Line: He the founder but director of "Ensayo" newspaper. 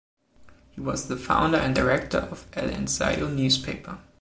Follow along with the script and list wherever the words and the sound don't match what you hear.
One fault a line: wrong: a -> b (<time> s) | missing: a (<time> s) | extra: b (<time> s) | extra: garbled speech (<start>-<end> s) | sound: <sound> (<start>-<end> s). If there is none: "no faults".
extra: was (0.8 s)
wrong: but -> and (1.6 s)
extra: El (2.6 s)